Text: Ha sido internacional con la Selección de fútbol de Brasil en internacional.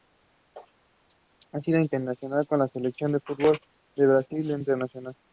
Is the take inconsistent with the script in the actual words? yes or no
no